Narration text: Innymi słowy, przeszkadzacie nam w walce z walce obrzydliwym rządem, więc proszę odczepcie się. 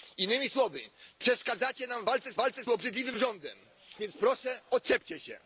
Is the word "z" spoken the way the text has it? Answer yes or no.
yes